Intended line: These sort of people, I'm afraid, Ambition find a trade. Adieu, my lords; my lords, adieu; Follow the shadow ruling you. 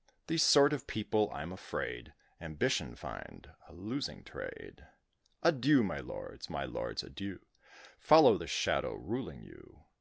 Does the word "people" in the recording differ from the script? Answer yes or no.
no